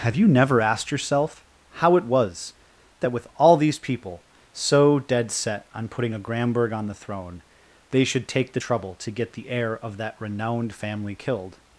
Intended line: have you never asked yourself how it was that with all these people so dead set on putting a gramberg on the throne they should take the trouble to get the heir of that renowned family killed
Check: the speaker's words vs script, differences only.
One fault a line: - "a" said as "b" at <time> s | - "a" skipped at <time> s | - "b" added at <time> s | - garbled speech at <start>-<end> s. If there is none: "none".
none